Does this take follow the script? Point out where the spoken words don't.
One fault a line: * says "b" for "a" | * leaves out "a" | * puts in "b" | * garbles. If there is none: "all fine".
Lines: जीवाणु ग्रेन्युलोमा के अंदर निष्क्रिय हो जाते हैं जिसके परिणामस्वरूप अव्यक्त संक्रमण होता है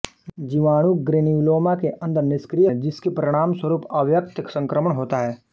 * leaves out "हो जाते"